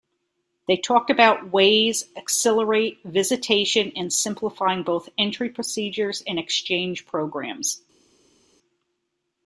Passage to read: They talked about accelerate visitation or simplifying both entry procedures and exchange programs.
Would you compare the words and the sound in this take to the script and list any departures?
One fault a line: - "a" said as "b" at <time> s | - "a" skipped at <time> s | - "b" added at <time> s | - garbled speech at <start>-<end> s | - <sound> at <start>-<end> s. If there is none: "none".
- "ways" added at 1.5 s
- "or" said as "and" at 4.0 s